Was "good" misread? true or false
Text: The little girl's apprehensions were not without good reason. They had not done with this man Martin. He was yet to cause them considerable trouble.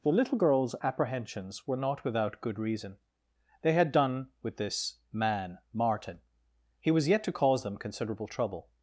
false